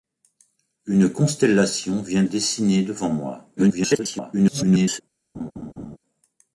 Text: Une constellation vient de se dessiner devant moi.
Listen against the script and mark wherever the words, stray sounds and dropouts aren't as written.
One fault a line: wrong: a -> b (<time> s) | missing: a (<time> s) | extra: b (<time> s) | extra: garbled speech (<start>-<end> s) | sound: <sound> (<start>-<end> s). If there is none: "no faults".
missing: de se (2.2 s)
extra: garbled speech (3.6-5.0 s)
sound: laugh (5.3-6.0 s)